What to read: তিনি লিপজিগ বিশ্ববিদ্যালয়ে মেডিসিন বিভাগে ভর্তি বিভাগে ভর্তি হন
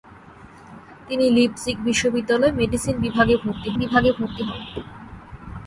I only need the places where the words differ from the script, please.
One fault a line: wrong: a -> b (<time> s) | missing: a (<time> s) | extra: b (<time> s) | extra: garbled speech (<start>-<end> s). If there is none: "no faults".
no faults